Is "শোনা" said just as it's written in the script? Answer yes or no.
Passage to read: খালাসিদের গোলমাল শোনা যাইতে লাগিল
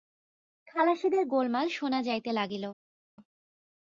yes